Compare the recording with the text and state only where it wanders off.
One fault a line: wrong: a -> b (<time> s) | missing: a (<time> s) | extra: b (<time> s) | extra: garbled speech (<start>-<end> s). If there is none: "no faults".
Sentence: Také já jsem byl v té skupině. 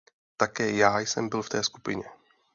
no faults